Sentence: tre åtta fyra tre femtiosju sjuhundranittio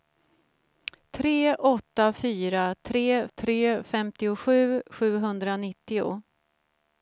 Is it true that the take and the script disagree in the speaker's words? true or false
true